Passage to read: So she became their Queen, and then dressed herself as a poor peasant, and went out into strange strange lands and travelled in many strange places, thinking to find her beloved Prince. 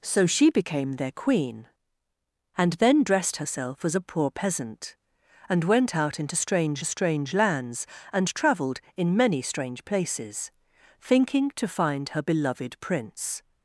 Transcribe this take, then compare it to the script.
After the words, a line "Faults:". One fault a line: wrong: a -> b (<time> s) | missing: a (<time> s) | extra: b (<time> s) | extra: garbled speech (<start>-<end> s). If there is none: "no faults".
So she became their Queen, and then dressed herself as a poor peasant, and went out into strange strange lands and travelled in many strange places, thinking to find her beloved Prince.
Faults:
no faults